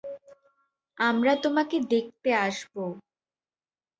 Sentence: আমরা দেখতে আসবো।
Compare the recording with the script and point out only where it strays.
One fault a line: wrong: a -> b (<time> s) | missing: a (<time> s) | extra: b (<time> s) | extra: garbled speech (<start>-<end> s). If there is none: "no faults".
extra: তোমাকে (1.4 s)